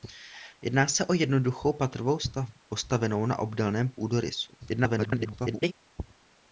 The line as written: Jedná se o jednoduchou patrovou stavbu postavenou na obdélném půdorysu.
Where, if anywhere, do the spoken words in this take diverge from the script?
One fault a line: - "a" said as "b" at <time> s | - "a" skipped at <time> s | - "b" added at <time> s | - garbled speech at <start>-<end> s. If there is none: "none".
- garbled speech at 4.6-5.7 s